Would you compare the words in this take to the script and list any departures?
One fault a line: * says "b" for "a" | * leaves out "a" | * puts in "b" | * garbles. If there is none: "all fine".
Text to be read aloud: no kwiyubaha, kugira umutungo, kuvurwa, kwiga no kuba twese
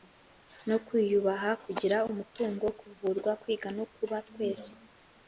all fine